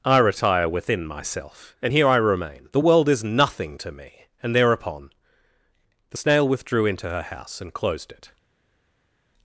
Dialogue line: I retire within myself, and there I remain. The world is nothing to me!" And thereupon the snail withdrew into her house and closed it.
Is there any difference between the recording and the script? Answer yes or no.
yes